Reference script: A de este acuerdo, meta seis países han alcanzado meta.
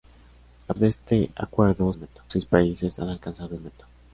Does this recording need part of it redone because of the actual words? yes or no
no